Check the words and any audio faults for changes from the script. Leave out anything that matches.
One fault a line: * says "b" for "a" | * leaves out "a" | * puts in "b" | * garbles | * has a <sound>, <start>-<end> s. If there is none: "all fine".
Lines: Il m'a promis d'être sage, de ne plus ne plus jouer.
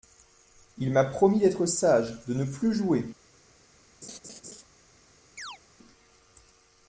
* leaves out "ne plus"
* has a laugh, 4.0-4.6 s
* has a chirp, 5.4-5.6 s